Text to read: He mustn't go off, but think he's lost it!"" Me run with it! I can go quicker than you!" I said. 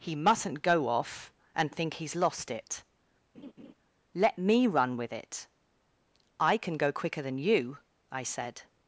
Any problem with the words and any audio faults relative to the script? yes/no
yes